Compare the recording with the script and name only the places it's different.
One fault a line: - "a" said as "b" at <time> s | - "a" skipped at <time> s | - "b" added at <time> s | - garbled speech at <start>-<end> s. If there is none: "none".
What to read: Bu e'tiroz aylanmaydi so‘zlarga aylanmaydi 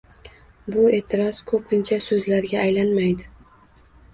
- "aylanmaydi" said as "ko‘pincha" at 1.5 s